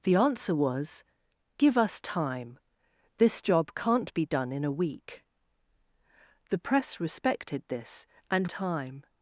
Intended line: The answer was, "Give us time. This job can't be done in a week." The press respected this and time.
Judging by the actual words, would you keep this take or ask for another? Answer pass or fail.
pass